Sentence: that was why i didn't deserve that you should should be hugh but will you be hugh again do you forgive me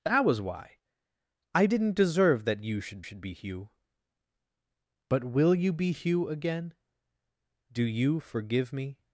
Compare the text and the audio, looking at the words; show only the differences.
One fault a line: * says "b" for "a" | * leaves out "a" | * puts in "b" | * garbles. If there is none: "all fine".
all fine